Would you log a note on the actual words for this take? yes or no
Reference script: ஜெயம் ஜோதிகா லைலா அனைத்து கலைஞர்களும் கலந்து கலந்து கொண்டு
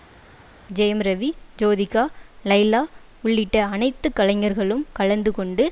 yes